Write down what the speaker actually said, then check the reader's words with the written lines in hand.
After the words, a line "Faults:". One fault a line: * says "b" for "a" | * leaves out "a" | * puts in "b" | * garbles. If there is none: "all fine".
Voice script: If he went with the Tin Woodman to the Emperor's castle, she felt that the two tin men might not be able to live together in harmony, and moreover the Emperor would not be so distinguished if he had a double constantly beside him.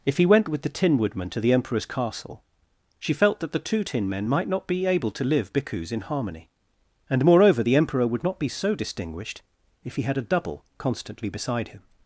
If he went with the Tin Woodman to the Emperor's castle, she felt that the two tin men might not be able to live bhikkhus in harmony, and moreover the Emperor would not be so distinguished if he had a double constantly beside him.
Faults:
* says "bhikkhus" for "together"